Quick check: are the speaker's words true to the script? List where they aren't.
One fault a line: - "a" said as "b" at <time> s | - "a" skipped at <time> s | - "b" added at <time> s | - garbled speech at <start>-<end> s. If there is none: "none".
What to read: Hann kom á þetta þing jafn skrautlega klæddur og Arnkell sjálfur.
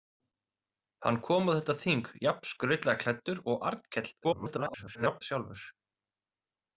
- garbled speech at 4.2-5.2 s